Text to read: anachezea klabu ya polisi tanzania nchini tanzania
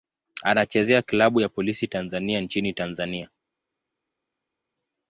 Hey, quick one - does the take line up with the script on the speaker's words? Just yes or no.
yes